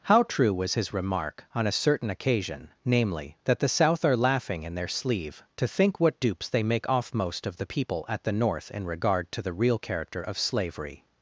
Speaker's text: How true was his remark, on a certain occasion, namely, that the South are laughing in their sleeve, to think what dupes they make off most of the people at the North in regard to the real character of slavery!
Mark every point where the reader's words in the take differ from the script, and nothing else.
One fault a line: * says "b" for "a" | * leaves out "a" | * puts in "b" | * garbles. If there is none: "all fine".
all fine